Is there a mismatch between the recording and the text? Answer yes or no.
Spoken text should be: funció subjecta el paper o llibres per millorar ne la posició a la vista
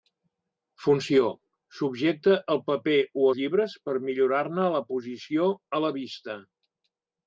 no